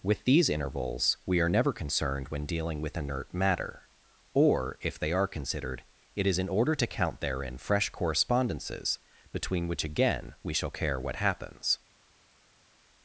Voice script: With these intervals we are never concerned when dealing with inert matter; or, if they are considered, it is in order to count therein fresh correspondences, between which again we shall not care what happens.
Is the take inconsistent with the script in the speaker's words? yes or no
yes